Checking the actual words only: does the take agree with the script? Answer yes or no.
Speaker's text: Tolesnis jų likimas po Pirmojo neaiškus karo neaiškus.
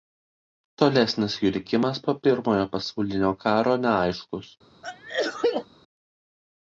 no